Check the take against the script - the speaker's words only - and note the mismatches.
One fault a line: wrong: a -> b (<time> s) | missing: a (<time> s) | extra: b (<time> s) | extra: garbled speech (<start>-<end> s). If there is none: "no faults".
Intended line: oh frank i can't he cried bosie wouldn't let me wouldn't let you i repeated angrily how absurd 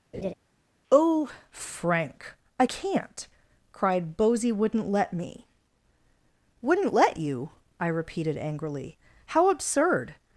missing: he (3.3 s)